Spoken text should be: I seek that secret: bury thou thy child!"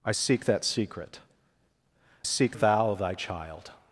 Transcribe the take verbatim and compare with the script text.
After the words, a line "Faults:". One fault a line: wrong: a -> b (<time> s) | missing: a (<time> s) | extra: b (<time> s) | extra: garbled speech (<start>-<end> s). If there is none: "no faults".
I seek that secret: seek thou thy child!"
Faults:
wrong: bury -> seek (2.2 s)